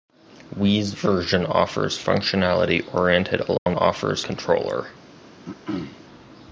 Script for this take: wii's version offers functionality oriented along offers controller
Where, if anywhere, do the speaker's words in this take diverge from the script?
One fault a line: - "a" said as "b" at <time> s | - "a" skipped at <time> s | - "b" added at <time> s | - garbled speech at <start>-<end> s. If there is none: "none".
none